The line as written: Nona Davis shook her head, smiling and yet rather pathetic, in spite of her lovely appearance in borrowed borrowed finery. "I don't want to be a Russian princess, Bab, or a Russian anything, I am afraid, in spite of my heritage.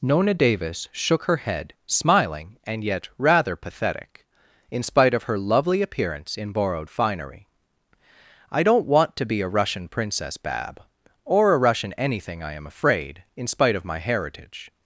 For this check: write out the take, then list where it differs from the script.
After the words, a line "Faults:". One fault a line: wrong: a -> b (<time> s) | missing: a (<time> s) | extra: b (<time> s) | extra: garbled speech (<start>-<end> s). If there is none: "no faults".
Nona Davis shook her head, smiling and yet rather pathetic, in spite of her lovely appearance in borrowed finery. "I don't want to be a Russian princess, Bab, or a Russian anything, I am afraid, in spite of my heritage.
Faults:
missing: borrowed (6.9 s)